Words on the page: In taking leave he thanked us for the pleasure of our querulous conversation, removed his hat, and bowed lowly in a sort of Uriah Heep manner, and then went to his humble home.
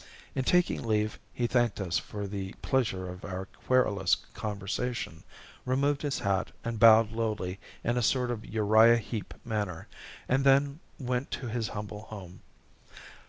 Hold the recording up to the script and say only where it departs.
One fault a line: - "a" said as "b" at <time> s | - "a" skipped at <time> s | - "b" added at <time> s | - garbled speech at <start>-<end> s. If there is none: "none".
none